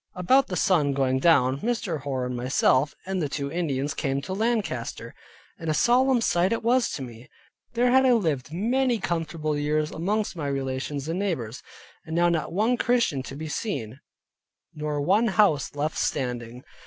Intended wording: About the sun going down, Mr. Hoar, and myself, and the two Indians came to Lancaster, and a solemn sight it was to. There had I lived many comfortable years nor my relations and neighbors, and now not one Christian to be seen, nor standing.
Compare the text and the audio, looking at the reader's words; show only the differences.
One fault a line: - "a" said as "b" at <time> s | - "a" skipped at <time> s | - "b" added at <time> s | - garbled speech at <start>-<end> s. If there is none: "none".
- "me" added at 7.0 s
- "nor" said as "amongst" at 9.9 s
- "one house left" added at 15.0 s